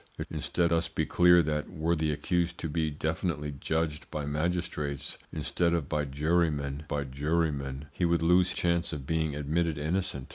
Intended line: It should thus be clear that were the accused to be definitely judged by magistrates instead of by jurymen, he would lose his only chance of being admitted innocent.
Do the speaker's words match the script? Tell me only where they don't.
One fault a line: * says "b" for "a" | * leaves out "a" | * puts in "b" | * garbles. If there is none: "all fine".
* says "instead" for "should"
* puts in "by jurymen"
* leaves out "his only"